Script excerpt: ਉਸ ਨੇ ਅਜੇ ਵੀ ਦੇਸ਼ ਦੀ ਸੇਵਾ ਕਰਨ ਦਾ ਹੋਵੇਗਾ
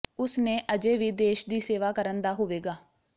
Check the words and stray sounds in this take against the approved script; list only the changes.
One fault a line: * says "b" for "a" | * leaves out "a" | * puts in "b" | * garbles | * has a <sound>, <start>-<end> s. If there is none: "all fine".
all fine